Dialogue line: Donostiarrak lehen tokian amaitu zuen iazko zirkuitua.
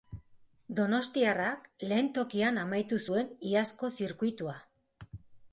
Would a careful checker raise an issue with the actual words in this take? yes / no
no